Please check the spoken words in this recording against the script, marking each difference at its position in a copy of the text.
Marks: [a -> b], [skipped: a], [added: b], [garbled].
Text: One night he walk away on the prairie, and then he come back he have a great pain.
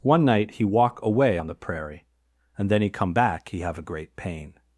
One night he walk away on the prairie, and then he come back he have a great pain.